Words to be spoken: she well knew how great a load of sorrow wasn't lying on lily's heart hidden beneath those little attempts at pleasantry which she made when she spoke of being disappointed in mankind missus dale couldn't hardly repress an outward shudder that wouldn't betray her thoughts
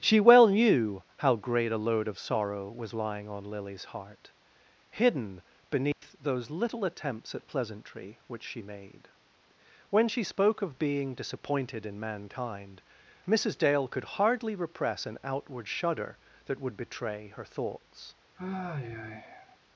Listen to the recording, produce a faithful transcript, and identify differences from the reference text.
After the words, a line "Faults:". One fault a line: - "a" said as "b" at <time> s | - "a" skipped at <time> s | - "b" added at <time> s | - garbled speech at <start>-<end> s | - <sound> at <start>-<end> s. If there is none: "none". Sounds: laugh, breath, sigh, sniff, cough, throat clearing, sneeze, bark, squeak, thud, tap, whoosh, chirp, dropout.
she well knew how great a load of sorrow was lying on lily's heart hidden beneath those little attempts at pleasantry which she made when she spoke of being disappointed in mankind missus dale could hardly repress an outward shudder that would betray her thoughts
Faults:
- "wasn't" said as "was" at 2.8 s
- dropout at 5.9-6.0 s
- "couldn't" said as "could" at 13.9 s
- "wouldn't" said as "would" at 16.6 s
- sigh at 18.4-19.6 s